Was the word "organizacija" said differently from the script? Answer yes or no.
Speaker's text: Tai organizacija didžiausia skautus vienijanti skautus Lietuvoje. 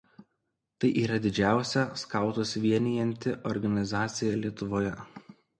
yes